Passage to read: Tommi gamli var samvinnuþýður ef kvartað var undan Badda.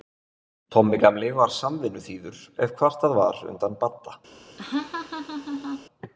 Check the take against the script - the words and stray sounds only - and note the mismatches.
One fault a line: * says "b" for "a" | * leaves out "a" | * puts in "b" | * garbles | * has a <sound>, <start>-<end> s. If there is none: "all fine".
* has a laugh, 4.6-5.9 s